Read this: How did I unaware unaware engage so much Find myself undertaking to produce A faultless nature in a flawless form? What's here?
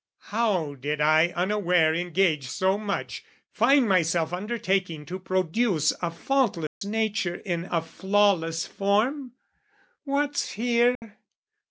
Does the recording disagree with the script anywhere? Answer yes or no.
yes